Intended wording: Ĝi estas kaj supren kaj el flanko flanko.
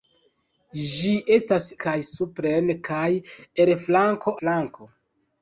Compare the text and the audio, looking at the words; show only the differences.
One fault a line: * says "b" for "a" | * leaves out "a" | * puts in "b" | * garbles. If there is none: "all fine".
all fine